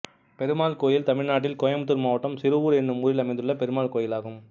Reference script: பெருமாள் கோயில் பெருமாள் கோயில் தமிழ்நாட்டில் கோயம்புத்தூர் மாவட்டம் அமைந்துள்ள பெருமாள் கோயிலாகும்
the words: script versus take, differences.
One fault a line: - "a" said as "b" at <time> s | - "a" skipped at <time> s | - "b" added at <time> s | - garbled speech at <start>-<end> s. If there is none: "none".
- "பெருமாள் கோயில்" skipped at 1.1 s
- "சிறுவூர் என்னும் ஊரில்" added at 2.4 s